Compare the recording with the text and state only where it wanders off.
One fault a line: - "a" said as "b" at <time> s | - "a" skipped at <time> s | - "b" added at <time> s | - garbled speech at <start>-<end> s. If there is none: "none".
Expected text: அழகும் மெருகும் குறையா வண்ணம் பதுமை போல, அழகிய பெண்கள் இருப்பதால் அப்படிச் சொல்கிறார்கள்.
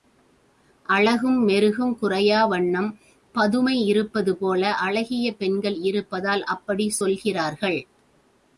- "இருப்பது" added at 3.9 s